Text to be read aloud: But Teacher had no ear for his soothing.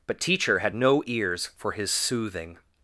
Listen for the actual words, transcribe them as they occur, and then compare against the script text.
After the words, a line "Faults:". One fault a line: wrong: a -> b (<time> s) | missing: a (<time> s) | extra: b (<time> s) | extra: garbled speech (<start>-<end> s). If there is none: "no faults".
But Teacher had no ears for his soothing.
Faults:
wrong: ear -> ears (1.1 s)